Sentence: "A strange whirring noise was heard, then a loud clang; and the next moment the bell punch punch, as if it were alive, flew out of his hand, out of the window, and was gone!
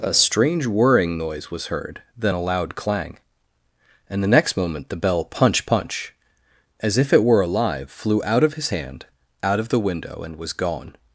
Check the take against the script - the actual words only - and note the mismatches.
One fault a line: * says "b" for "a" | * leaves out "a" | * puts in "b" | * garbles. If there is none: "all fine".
all fine